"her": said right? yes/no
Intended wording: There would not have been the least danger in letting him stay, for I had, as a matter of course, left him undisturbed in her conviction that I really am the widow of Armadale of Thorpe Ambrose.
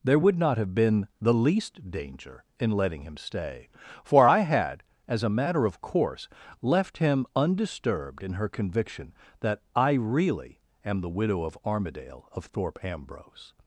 yes